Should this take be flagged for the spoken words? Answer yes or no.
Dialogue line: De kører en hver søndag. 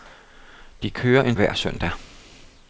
no